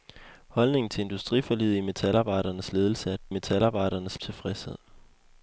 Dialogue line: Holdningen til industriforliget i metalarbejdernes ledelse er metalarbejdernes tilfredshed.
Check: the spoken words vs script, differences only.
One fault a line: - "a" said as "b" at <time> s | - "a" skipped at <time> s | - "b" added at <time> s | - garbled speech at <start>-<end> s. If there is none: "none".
none